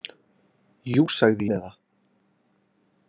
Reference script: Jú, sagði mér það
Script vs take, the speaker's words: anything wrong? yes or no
no